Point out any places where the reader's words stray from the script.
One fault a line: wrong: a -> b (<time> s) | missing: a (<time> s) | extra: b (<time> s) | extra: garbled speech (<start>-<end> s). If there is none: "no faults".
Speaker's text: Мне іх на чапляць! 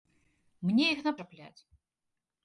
no faults